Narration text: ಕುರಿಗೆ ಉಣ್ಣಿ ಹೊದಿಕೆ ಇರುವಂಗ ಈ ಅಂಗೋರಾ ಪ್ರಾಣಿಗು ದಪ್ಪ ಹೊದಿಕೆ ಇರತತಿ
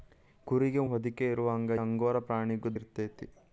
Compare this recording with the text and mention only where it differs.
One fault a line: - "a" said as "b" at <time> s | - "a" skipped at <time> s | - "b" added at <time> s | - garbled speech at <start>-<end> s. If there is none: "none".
- "ಉಣ್ಣಿ" skipped at 0.8 s
- "ಈ" skipped at 1.7 s
- "ದಪ್ಪ ಹೊದಿಕೆ" skipped at 2.8 s